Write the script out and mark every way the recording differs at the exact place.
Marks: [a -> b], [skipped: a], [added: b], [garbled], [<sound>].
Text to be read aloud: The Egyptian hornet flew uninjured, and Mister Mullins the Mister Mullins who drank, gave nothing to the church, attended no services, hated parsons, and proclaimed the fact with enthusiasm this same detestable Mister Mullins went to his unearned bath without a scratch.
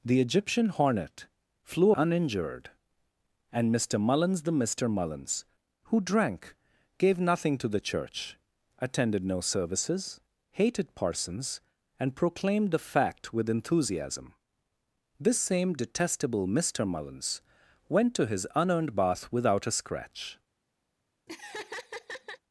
The Egyptian hornet flew uninjured, and Mister Mullins the Mister Mullins who drank, gave nothing to the church, attended no services, hated parsons, and proclaimed the fact with enthusiasm this same detestable Mister Mullins went to his unearned bath without a scratch. [laugh]